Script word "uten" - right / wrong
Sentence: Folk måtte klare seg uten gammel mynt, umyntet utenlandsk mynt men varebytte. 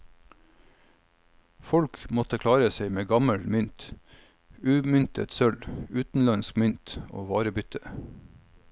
wrong